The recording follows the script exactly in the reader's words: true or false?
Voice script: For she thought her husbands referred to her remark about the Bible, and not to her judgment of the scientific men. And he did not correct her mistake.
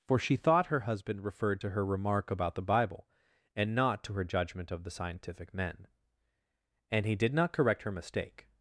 false